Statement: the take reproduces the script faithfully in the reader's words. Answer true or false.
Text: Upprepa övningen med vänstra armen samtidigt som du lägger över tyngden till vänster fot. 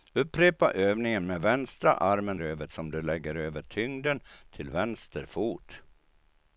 false